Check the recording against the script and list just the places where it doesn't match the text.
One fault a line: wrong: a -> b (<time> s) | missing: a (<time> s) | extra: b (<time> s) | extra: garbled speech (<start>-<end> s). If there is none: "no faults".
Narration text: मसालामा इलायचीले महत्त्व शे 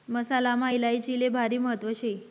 extra: भारी (1.3 s)